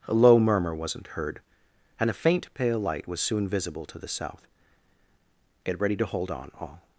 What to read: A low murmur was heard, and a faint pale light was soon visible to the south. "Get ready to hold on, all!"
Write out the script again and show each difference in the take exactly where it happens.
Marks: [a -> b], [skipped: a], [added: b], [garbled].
A low murmur [was -> wasn't] heard, and a faint pale light was soon visible to the south. "Get ready to hold on, all!"